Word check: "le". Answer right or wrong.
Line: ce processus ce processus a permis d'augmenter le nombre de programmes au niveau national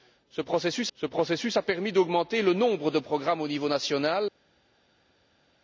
right